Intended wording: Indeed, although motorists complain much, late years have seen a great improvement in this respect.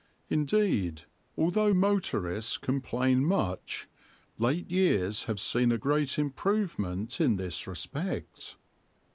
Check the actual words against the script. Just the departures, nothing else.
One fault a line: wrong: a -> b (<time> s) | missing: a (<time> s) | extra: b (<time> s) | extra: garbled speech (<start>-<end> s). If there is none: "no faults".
no faults